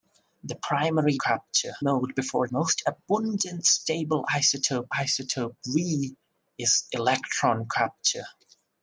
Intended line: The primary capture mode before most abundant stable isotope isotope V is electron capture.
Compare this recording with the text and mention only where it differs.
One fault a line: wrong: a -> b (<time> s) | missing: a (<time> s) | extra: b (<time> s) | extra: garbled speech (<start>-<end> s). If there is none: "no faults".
no faults